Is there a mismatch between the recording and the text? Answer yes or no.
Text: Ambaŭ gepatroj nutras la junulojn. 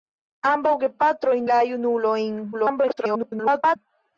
yes